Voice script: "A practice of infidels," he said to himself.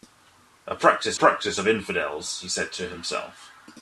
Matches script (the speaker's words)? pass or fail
fail